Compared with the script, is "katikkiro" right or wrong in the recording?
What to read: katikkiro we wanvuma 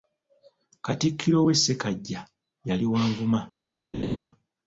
right